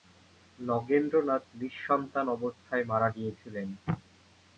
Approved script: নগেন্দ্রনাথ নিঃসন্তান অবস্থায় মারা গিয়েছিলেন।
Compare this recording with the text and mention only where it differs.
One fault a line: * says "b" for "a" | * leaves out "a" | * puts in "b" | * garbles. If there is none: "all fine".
all fine